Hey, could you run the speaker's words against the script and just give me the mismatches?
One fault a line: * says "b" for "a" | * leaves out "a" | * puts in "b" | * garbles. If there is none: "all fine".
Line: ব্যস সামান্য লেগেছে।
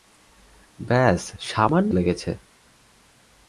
all fine